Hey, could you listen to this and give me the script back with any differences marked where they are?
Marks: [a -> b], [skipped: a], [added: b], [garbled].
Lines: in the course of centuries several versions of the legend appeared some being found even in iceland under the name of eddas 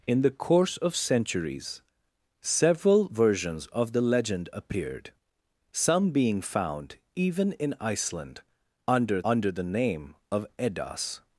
in the course of centuries several versions of the legend appeared some being found even in iceland under [added: under] the name of eddas